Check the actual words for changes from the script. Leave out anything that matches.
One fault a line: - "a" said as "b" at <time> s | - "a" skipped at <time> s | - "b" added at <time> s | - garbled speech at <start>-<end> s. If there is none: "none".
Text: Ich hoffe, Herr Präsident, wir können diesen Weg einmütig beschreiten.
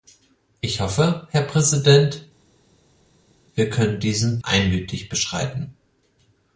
- "Weg" skipped at 4.4 s